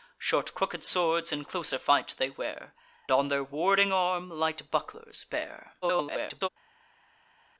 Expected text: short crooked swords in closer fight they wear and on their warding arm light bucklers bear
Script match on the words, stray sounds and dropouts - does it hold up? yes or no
no